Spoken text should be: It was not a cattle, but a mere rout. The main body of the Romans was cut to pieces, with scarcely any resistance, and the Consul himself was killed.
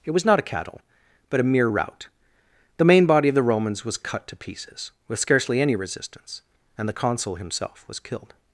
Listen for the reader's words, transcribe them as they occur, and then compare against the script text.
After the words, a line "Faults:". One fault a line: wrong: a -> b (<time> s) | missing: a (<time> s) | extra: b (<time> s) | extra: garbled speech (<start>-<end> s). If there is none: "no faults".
It was not a cattle, but a mere rout. The main body of the Romans was cut to pieces, with scarcely any resistance, and the Consul himself was killed.
Faults:
no faults